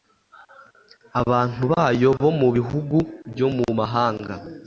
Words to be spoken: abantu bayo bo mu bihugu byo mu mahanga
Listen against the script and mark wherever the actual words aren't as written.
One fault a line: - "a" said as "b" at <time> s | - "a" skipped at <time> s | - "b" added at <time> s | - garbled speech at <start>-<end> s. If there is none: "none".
none